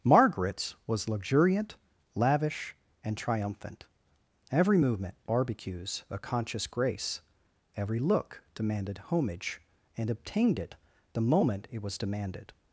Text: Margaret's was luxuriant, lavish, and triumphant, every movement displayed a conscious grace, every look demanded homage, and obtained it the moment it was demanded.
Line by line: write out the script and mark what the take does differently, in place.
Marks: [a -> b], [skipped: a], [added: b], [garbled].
Margaret's was luxuriant, lavish, and triumphant, every movement [displayed -> barbecues] a conscious grace, every look demanded homage, and obtained it the moment it was demanded.